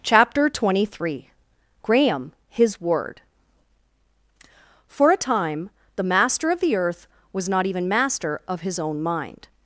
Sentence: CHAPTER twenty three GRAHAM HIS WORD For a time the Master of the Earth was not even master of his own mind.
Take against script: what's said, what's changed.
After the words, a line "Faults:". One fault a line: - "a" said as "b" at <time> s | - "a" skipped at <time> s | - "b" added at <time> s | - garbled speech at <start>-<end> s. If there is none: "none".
CHAPTER twenty three GRAHAM HIS WORD For a time the Master of the Earth was not even master of his own mind.
Faults:
none